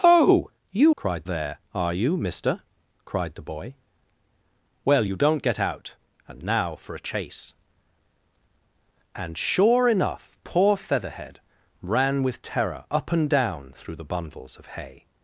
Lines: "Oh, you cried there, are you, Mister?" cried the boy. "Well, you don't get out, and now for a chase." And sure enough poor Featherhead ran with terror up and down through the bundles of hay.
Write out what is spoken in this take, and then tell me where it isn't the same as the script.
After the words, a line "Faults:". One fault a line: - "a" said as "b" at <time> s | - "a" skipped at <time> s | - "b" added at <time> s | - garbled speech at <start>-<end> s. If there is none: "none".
"Oh, you cried there, are you, Mister?" cried the boy. "Well, you don't get out, and now for a chase." And sure enough poor Featherhead ran with terror up and down through the bundles of hay.
Faults:
none